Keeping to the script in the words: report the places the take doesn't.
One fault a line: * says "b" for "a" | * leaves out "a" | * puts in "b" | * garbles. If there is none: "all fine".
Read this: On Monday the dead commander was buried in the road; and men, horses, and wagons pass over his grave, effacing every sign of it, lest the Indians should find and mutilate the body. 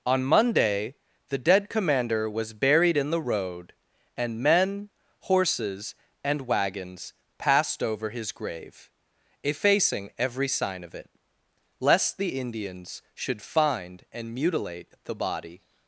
* says "passed" for "pass"